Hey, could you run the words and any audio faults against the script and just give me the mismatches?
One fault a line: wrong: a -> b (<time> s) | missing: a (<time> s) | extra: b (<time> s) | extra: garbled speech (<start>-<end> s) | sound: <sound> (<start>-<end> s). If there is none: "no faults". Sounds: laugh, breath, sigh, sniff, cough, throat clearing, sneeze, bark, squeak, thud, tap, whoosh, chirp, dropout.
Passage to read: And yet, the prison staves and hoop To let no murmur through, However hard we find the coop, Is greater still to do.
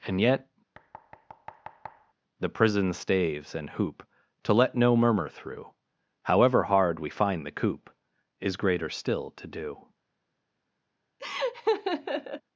sound: thud (0.7-2.1 s)
sound: laugh (11.2-12.4 s)